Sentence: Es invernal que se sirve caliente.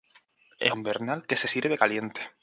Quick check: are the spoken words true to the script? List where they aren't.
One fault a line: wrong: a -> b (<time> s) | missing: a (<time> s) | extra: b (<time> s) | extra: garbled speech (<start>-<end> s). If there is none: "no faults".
no faults